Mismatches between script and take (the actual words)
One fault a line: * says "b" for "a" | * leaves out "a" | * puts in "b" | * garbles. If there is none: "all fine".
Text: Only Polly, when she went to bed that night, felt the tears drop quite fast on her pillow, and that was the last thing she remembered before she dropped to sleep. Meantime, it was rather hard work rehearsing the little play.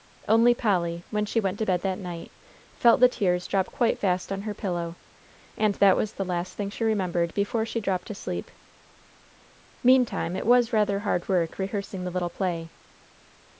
all fine